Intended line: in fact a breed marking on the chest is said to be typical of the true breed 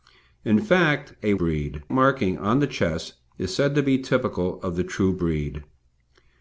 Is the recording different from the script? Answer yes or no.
no